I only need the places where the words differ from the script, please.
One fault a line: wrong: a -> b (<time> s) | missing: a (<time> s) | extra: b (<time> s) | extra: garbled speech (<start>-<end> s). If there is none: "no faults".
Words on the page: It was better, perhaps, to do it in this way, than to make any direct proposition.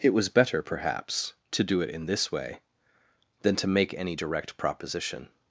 no faults